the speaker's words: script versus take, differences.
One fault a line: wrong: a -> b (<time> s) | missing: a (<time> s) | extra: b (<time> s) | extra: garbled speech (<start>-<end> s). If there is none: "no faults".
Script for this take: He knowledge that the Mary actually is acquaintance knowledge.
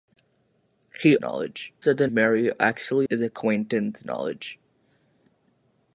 no faults